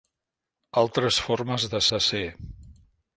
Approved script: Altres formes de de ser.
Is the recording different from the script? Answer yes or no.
no